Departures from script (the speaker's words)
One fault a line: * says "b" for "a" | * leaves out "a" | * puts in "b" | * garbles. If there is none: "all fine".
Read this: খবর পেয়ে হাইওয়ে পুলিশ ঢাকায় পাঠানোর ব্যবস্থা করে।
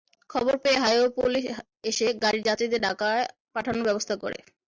* puts in "এসে গাড়ির যাত্রীদের"